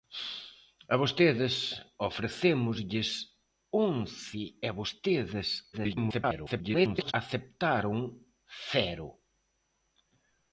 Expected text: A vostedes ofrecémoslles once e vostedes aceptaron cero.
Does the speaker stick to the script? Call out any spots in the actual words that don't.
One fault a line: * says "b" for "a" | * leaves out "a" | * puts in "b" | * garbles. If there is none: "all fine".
* garbles